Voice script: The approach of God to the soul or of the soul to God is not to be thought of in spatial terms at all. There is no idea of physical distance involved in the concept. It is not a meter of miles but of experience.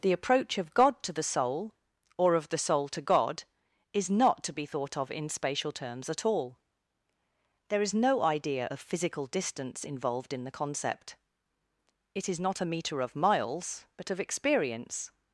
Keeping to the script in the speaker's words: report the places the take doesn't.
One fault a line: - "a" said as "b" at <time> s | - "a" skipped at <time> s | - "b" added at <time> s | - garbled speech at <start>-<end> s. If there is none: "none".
none